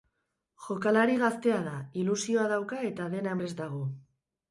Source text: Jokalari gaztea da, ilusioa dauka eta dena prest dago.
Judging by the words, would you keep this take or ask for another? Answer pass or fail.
pass